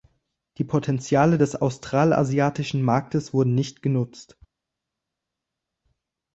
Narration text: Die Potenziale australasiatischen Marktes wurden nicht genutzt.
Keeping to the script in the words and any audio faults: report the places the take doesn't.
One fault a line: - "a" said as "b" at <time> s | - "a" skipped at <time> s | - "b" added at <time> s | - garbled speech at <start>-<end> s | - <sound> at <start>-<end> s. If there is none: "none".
- "des" added at 1.4 s